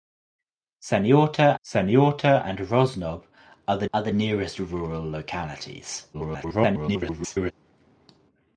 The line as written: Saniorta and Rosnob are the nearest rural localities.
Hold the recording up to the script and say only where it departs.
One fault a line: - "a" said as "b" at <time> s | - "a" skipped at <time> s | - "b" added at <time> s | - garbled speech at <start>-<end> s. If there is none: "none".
- "saniorta" added at 1.6 s
- "are the" added at 3.9 s
- garbled speech at 6.1-7.5 s